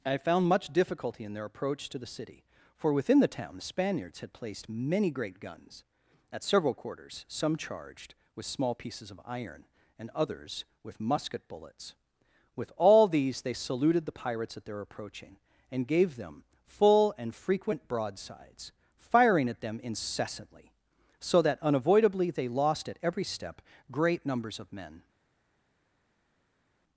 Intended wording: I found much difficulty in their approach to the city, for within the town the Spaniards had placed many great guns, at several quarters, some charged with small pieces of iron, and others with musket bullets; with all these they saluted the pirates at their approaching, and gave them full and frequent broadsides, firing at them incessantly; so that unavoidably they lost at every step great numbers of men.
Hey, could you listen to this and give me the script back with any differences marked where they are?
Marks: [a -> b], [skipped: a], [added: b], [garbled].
I found much difficulty in their approach to the city, for within the town the Spaniards had placed many great guns, at several quarters, some charged with small pieces of iron, and others with musket bullets; with all these they saluted the pirates at their approaching, and gave them full and frequent broadsides, firing at them incessantly; so that unavoidably they lost at every step great numbers of men.